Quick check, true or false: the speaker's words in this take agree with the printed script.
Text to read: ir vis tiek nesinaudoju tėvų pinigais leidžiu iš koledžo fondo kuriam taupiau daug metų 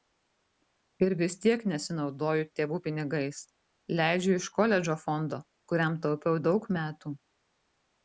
true